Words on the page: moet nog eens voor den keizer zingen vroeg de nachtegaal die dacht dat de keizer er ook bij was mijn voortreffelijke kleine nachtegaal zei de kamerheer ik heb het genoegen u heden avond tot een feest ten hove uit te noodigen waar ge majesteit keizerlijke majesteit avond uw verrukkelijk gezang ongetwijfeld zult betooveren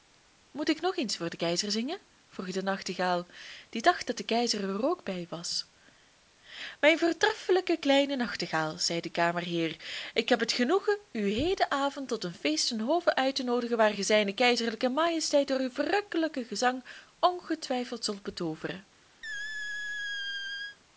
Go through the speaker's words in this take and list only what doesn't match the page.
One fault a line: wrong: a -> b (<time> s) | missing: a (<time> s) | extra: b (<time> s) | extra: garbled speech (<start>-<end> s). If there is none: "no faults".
extra: ik (0.7 s)
wrong: majesteit -> zijne (14.0 s)
wrong: avond -> door (15.5 s)